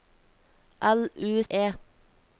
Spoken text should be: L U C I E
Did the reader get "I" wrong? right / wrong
wrong